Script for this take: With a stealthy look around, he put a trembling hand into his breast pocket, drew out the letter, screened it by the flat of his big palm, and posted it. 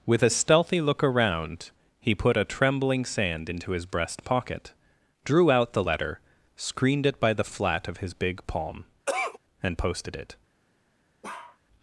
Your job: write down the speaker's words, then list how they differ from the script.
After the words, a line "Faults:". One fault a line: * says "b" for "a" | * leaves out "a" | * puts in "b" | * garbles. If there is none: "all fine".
With a stealthy look around, he put a trembling sand into his breast pocket, drew out the letter, screened it by the flat of his big palm, and posted it.
Faults:
* says "sand" for "hand"